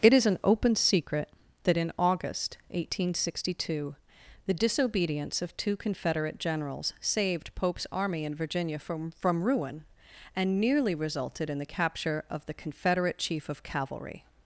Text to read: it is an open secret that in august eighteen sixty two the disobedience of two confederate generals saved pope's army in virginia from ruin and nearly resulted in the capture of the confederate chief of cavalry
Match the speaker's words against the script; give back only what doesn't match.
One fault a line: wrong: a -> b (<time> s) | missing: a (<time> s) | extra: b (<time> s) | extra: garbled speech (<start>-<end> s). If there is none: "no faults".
extra: from (9.2 s)